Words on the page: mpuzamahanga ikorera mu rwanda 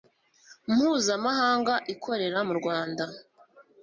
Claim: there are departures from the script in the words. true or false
false